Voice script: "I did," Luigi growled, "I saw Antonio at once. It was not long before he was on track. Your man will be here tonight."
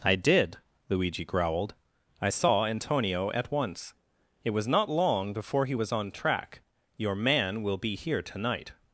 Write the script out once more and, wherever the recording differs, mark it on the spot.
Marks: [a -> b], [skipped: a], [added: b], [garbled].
"I did," Luigi growled, "I saw Antonio at once. It was not long before he was on track. Your man will be here tonight."